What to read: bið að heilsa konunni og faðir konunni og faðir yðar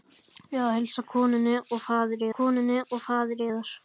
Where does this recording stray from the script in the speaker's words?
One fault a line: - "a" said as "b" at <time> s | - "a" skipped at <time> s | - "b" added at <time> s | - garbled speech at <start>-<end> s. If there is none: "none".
none